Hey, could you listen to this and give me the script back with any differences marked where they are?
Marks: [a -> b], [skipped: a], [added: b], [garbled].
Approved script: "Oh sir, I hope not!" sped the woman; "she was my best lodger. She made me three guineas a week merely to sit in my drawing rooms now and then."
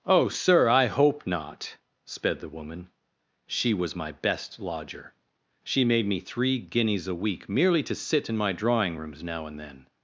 "Oh sir, I hope not!" sped the woman; "she was my best lodger. She made me three guineas a week merely to sit in my drawing rooms now and then."